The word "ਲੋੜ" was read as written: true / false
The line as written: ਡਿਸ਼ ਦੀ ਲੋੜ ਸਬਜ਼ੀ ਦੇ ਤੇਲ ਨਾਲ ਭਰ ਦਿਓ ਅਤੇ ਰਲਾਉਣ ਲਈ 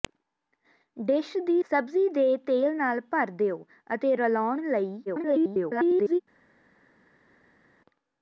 false